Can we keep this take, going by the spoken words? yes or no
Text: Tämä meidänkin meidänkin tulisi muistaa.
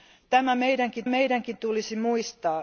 yes